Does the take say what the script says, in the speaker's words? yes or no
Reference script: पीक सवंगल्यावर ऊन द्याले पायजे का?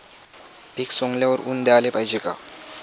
yes